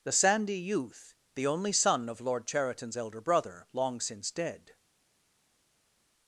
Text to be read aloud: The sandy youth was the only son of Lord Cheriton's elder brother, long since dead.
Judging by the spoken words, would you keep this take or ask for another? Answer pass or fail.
fail